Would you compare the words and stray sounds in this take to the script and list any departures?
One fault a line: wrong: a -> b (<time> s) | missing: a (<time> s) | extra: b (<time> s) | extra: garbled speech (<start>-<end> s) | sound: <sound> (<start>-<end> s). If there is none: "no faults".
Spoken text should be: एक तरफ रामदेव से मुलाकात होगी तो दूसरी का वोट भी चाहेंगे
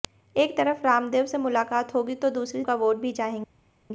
no faults